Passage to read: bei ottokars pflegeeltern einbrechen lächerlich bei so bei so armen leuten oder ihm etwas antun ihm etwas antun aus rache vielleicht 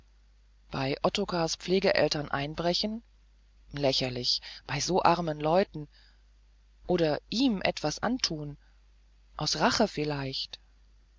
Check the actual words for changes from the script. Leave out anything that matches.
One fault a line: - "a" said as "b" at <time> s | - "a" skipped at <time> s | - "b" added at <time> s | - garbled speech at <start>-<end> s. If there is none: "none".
- "bei so" skipped at 5.0 s
- "ihm etwas antun" skipped at 8.6 s